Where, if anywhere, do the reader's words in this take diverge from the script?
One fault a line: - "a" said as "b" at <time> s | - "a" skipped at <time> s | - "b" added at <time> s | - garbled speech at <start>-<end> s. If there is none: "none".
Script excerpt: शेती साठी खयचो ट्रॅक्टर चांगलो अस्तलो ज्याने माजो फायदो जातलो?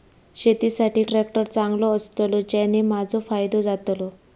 - "खयचो" skipped at 1.0 s